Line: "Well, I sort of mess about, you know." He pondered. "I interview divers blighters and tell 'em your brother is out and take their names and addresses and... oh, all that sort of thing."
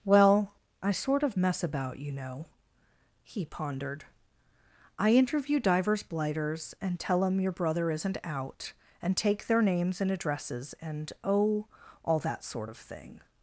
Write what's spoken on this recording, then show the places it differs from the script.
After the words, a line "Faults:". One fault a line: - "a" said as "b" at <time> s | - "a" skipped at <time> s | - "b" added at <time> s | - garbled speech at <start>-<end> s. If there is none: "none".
"Well, I sort of mess about, you know." He pondered. "I interview divers blighters and tell 'em your brother isn't out and take their names and addresses and... oh, all that sort of thing."
Faults:
- "is" said as "isn't" at 7.9 s